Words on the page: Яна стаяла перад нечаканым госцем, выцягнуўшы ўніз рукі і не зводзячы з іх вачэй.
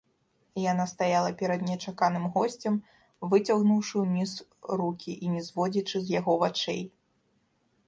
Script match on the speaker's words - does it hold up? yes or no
no